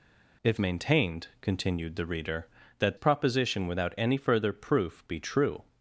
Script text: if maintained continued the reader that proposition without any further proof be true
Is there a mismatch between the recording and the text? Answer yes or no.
no